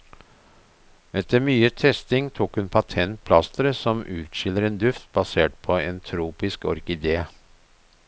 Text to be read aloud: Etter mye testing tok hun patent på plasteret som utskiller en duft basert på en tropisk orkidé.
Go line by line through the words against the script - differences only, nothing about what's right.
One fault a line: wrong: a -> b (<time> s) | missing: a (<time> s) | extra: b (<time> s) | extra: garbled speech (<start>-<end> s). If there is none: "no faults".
missing: på (3.2 s)